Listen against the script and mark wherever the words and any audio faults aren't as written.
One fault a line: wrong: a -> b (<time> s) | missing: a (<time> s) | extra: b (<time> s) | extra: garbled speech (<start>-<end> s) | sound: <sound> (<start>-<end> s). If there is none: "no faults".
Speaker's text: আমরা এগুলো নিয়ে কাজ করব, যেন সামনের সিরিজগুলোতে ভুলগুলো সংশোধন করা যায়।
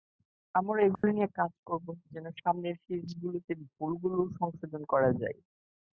sound: dropout (0.9-1.0 s)